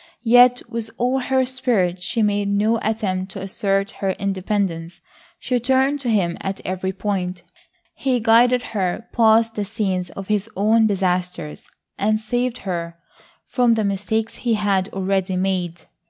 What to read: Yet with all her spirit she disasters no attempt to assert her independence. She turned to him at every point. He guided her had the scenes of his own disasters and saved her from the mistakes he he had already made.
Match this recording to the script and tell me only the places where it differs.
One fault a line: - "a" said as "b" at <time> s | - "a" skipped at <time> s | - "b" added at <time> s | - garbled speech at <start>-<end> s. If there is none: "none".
- "disasters" said as "made" at 2.2 s
- "had" said as "past" at 9.1 s
- "he" skipped at 14.5 s